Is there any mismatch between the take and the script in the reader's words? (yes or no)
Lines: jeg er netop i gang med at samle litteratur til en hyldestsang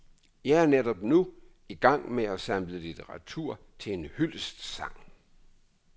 yes